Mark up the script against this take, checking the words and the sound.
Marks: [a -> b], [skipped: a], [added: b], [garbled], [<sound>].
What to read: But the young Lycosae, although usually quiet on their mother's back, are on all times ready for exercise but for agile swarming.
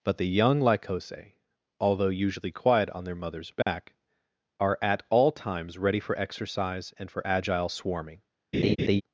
But the young Lycosae, although usually quiet on their mother's back, [dropout] are [on -> at] all times ready for exercise [but -> and] for agile swarming. [laugh]